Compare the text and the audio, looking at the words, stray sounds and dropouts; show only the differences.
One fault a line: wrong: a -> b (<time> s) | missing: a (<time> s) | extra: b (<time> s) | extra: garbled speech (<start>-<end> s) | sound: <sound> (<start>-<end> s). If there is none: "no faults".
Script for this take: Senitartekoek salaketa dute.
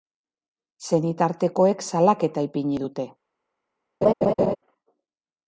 extra: ipini (2.5 s)
sound: laugh (4.0-4.6 s)